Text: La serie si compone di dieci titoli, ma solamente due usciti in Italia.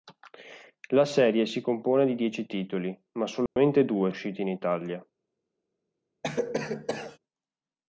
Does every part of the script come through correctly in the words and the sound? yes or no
no